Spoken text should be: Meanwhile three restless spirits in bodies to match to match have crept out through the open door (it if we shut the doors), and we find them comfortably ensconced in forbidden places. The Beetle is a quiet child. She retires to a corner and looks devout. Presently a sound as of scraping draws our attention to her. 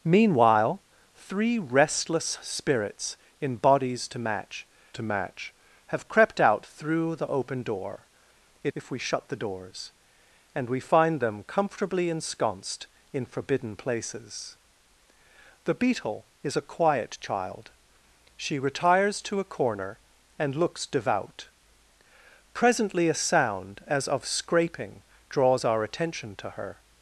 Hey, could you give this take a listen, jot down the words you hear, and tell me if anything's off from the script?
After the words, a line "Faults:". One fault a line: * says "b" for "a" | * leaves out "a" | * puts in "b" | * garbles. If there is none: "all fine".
Meanwhile three restless spirits in bodies to match to match have crept out through the open door (it if we shut the doors), and we find them comfortably ensconced in forbidden places. The Beetle is a quiet child. She retires to a corner and looks devout. Presently a sound as of scraping draws our attention to her.
Faults:
all fine